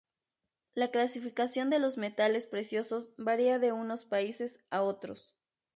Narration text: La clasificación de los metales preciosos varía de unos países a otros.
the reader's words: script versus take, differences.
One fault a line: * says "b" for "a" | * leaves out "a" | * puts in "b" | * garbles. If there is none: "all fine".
all fine